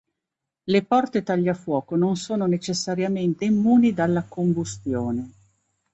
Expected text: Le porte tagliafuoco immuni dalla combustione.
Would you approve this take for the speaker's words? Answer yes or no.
no